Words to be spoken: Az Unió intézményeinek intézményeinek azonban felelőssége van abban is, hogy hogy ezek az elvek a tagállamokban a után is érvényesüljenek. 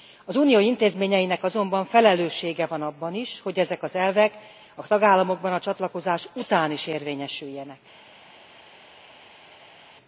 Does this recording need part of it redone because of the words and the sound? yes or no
yes